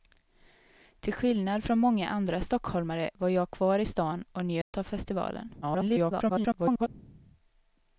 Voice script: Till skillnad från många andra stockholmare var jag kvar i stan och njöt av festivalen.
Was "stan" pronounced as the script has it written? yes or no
yes